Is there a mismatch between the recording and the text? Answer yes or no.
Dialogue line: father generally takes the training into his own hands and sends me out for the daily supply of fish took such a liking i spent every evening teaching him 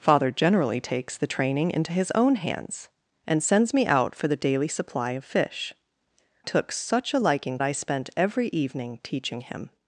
no